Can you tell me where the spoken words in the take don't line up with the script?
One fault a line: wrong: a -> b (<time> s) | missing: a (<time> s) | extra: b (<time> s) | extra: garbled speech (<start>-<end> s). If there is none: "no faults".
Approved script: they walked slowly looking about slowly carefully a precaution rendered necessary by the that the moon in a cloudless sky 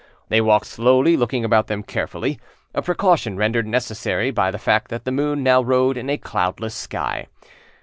wrong: slowly -> them (1.7 s)
extra: fact (4.6 s)
extra: now rode (5.4 s)